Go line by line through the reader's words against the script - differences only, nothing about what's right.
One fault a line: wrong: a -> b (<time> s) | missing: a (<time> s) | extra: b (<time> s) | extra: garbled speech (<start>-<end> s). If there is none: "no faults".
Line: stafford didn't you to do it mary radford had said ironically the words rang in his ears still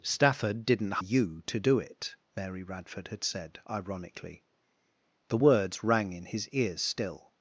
no faults